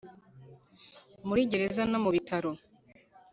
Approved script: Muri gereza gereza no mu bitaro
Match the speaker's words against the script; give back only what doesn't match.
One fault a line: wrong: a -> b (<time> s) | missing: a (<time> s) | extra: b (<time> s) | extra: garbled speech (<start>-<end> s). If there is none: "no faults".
missing: gereza (1.8 s)